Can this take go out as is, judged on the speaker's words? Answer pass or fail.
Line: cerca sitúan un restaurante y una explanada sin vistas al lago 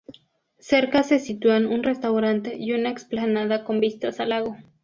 fail